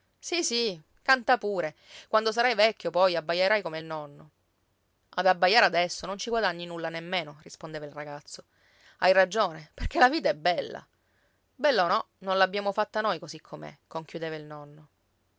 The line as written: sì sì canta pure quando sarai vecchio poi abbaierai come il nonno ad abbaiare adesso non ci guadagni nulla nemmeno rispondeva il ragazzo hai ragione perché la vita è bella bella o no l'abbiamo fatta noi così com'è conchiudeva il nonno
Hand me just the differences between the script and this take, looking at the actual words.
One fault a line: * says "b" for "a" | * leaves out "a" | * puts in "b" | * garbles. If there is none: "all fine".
* puts in "non"